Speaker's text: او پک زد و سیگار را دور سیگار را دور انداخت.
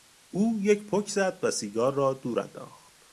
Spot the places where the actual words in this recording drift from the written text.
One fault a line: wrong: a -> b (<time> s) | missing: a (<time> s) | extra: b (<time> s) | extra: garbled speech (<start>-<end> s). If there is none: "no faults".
extra: یک (0.6 s)
missing: سیگار را دور (2.4 s)